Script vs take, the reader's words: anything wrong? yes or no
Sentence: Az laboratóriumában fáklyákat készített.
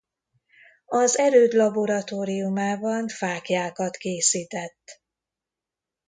yes